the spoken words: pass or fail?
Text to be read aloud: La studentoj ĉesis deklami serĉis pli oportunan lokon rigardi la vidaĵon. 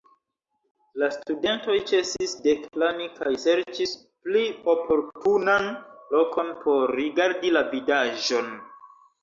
fail